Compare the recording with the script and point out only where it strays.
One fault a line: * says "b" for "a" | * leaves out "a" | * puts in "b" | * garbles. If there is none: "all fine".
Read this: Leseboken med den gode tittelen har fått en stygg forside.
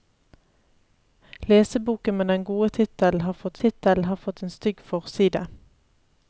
* puts in "tittelen har fått"